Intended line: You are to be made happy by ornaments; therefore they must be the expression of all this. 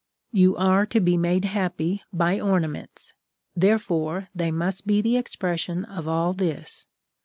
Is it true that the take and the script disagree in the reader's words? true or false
false